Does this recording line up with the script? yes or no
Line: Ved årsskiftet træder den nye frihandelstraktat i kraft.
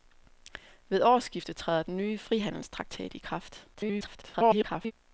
no